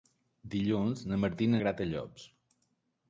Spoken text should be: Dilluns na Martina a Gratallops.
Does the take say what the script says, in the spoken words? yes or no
yes